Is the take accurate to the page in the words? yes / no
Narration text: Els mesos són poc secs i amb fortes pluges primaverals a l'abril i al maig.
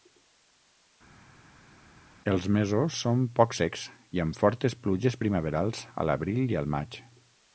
yes